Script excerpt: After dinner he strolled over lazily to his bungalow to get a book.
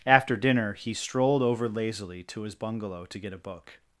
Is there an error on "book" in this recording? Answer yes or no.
no